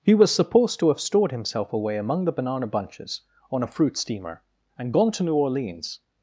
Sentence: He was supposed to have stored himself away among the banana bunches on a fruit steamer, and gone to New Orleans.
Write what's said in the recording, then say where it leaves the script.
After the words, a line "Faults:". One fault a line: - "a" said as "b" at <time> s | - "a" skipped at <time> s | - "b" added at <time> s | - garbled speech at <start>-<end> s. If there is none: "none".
He was supposed to have stored himself away among the banana bunches on a fruit steamer, and gone to New Orleans.
Faults:
none